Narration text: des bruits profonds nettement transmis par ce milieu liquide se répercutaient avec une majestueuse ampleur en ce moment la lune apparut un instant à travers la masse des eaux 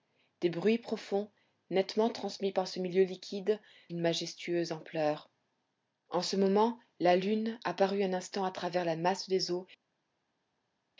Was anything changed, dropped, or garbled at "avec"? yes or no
yes